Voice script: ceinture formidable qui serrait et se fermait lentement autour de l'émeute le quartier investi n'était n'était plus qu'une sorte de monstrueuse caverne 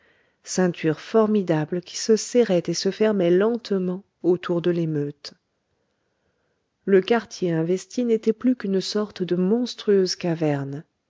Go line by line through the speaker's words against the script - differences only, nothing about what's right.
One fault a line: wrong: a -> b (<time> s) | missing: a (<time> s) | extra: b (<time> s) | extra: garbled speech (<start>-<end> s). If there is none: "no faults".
extra: se (1.9 s)
missing: n'était (8.3 s)